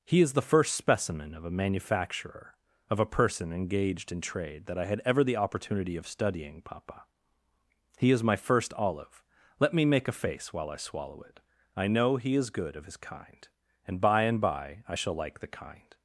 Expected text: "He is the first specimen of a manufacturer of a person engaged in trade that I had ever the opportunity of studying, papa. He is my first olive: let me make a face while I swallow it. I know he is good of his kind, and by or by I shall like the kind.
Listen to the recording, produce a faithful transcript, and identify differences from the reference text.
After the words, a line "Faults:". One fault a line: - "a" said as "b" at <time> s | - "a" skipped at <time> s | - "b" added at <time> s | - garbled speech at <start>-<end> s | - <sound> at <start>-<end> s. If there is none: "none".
"He is the first specimen of a manufacturer of a person engaged in trade that I had ever the opportunity of studying, papa. He is my first olive: let me make a face while I swallow it. I know he is good of his kind, and by and by I shall like the kind.
Faults:
- "or" said as "and" at 14.2 s